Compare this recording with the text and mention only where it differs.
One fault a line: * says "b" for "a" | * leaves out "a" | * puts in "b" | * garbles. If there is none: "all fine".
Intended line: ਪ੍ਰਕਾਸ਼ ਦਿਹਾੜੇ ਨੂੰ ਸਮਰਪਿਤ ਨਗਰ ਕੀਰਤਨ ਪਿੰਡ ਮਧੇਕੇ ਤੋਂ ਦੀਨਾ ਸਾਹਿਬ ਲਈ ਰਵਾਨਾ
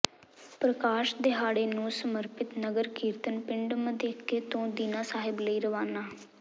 all fine